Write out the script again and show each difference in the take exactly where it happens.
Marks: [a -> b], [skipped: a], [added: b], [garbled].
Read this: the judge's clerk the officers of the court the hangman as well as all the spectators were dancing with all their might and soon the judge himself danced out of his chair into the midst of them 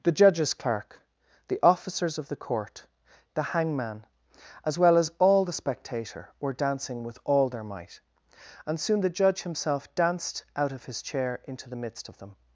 the judge's clerk the officers of the court the hangman as well as all the [spectators -> spectator] were dancing with all their might and soon the judge himself danced out of his chair into the midst of them